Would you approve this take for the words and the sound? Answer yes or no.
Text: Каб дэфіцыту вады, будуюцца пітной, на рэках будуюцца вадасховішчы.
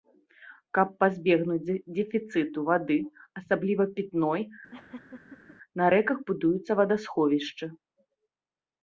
no